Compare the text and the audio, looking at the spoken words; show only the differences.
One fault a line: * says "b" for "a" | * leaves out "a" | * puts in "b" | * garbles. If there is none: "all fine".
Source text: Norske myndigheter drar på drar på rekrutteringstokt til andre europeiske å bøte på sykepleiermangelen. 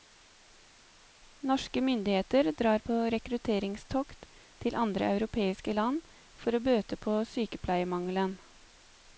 * leaves out "drar på"
* puts in "land for"